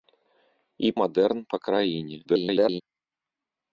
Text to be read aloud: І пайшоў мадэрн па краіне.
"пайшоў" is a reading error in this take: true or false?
true